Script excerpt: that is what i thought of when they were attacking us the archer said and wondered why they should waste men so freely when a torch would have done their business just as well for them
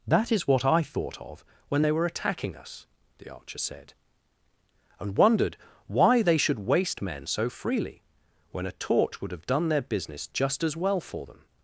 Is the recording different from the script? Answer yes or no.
no